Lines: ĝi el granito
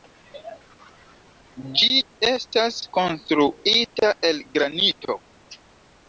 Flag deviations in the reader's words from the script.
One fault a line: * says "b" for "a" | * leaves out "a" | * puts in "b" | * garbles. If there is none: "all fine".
* puts in "estas konstruita"